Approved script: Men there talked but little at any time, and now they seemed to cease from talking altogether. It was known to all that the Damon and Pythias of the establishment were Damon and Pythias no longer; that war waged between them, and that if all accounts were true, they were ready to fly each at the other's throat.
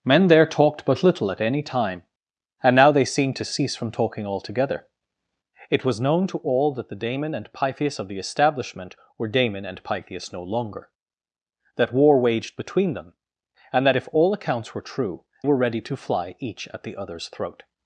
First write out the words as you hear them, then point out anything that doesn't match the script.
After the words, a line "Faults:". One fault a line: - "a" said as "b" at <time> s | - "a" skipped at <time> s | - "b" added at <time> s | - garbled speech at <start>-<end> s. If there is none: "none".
Men there talked but little at any time, and now they seemed to cease from talking altogether. It was known to all that the Damon and Pythias of the establishment were Damon and Pythias no longer; that war waged between them, and that if all accounts were true, were ready to fly each at the other's throat.
Faults:
- "they" skipped at 15.2 s